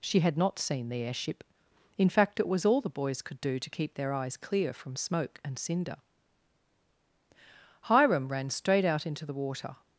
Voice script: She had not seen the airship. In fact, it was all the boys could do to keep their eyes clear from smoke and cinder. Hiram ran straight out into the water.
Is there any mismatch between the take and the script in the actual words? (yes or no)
no